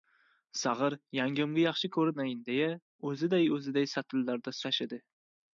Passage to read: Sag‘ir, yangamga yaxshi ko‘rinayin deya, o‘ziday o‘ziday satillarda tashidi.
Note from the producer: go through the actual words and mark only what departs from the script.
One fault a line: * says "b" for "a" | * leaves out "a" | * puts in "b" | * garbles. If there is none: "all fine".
all fine